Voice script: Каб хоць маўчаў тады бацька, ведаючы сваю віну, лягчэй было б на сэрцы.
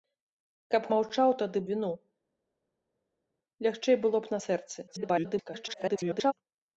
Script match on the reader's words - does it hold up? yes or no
no